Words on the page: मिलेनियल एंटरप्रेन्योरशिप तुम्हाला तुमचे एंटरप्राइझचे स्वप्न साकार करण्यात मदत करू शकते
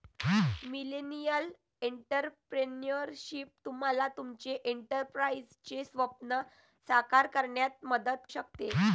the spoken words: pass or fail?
fail